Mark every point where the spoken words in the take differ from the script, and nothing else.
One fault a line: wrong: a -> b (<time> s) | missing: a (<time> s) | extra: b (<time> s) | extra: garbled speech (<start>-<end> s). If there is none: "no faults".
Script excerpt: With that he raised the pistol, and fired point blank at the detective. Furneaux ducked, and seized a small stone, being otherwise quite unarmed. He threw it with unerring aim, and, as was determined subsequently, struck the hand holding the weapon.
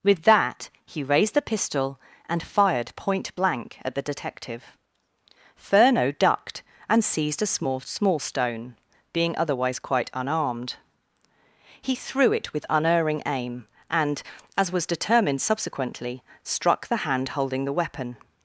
extra: small (7.8 s)